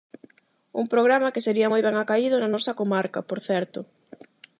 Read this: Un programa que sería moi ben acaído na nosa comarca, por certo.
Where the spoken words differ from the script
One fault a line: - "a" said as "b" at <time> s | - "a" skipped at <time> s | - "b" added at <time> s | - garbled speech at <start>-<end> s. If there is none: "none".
none